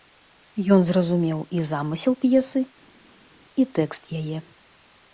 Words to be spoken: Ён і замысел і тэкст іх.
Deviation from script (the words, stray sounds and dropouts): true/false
true